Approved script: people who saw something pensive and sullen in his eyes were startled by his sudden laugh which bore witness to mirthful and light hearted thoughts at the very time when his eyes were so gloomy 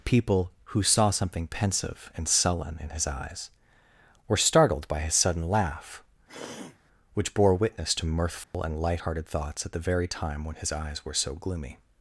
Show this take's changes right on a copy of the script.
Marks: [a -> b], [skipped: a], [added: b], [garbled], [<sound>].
people who saw something pensive and sullen in his eyes were startled by his sudden laugh [throat clearing] which bore witness to mirthful [dropout] and light hearted thoughts at the very time when his eyes were so gloomy